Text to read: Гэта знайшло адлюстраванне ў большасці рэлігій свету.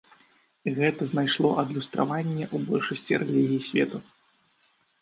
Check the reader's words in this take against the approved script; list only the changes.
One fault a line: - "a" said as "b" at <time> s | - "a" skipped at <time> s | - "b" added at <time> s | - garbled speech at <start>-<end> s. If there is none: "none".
none